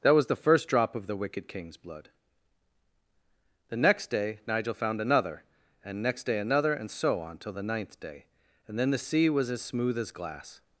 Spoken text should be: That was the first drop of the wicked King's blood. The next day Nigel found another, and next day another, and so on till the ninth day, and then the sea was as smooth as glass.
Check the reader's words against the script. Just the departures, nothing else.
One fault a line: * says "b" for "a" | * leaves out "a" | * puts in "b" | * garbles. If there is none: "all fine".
all fine